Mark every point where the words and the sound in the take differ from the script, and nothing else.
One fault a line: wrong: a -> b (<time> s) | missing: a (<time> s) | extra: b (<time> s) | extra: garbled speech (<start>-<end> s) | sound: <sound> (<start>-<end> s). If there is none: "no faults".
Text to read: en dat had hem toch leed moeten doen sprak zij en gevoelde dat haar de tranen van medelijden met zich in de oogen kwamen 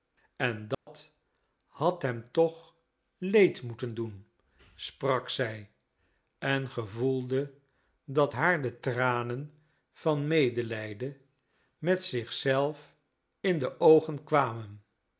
sound: dropout (0.7-0.9 s)
extra: zelf (12.3 s)